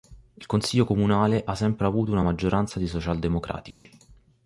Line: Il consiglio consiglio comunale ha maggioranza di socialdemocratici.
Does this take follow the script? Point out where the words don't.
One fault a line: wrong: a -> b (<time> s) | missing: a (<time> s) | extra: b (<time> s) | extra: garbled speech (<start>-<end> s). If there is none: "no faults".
missing: consiglio (0.8 s)
extra: sempre avuto una (1.5 s)